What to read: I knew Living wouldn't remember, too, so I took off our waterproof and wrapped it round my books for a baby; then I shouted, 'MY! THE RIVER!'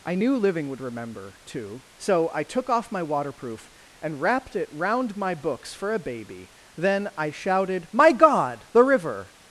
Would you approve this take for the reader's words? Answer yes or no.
no